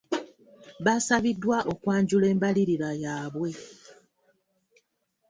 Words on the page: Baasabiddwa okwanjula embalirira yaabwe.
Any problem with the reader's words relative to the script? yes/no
no